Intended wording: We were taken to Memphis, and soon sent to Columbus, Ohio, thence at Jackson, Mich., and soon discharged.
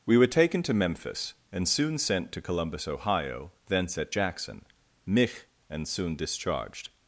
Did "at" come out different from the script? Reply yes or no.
no